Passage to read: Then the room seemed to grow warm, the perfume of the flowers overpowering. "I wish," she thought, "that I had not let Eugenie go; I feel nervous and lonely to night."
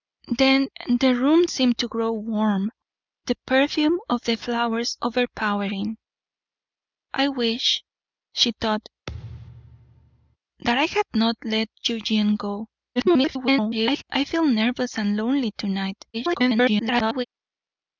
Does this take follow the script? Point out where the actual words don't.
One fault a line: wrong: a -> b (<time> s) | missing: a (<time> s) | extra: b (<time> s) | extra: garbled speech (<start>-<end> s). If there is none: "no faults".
extra: garbled speech (13.0-14.0 s)
extra: garbled speech (16.1-17.2 s)